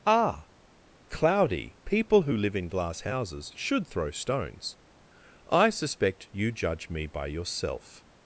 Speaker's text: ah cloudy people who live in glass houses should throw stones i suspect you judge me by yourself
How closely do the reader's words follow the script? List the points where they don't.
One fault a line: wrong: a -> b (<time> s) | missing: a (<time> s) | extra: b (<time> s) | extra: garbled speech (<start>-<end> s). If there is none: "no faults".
no faults